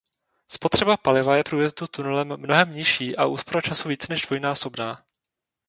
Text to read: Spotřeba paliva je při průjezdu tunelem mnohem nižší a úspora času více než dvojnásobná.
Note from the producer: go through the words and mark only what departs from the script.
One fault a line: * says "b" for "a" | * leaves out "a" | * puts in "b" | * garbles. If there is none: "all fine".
* leaves out "při"